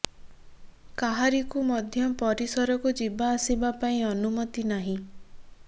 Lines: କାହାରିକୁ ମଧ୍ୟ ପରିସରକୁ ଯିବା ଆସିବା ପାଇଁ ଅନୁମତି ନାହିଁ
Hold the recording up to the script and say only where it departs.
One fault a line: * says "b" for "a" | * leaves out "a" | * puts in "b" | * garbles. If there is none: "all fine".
all fine